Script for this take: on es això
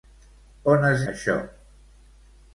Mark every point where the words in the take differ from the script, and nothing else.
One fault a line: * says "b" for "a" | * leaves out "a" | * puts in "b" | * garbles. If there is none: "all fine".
all fine